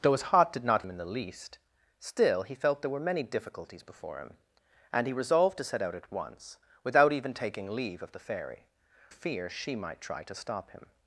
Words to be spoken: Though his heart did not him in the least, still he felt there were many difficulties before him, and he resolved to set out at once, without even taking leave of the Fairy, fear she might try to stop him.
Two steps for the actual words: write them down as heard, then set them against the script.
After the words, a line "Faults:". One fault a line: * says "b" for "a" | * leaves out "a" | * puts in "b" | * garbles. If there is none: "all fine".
Though his heart did not him in the least, still he felt there were many difficulties before him, and he resolved to set out at once, without even taking leave of the Fairy, fear she might try to stop him.
Faults:
all fine